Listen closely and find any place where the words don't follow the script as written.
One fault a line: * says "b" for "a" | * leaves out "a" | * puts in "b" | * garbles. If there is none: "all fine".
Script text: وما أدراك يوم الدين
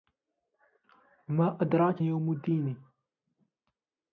all fine